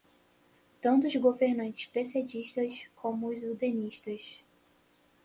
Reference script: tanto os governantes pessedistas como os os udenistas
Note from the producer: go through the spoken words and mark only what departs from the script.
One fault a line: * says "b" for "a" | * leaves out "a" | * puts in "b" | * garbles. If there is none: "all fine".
* leaves out "os"